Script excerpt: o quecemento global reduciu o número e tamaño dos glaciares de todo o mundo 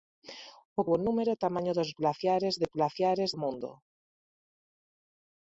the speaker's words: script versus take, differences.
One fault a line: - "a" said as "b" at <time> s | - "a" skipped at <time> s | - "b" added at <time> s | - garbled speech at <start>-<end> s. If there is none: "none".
- "quecemento global reduciu" skipped at 0.8 s
- "todo" said as "glaciares" at 2.7 s